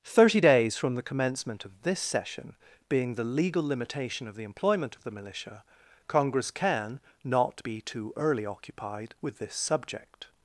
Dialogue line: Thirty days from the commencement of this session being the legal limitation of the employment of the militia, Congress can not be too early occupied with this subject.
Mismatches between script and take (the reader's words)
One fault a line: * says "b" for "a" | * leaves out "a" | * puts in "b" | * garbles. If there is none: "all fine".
all fine